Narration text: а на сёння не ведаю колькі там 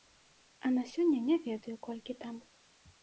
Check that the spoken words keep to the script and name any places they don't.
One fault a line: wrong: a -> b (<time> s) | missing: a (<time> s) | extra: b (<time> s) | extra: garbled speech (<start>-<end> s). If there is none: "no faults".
no faults